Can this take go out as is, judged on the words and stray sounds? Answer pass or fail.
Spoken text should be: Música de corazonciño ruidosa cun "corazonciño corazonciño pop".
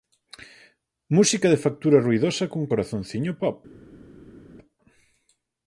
fail